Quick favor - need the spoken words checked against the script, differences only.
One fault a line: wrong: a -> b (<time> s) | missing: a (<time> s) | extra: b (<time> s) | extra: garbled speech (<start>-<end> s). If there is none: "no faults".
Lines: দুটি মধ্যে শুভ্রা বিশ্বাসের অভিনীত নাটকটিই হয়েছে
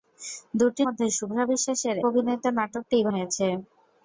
no faults